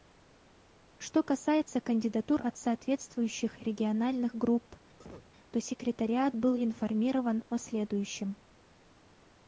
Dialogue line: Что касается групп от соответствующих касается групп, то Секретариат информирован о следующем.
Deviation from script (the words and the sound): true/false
true